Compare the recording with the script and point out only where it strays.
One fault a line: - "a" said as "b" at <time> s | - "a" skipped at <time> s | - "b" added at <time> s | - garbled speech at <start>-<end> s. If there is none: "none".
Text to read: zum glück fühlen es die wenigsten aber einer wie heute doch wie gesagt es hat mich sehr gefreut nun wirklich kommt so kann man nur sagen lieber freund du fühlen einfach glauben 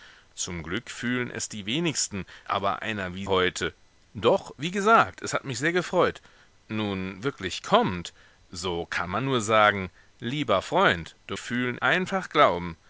none